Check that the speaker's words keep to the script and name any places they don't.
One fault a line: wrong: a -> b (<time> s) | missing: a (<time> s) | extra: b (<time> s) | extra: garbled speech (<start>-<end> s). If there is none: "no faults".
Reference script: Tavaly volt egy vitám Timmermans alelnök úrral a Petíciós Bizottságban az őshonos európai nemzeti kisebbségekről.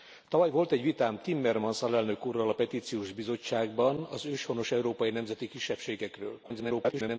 extra: garbled speech (6.4-7.2 s)